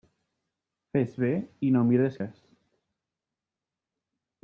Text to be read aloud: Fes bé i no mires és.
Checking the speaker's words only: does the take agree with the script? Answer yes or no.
yes